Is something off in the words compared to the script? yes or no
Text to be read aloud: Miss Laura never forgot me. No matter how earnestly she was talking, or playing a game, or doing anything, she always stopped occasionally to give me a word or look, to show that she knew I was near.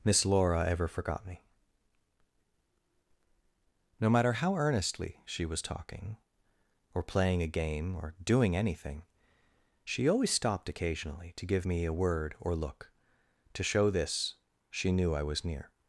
yes